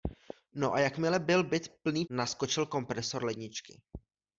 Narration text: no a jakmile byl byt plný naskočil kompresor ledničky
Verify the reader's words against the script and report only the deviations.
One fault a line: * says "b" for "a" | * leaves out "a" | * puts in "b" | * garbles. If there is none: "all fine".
all fine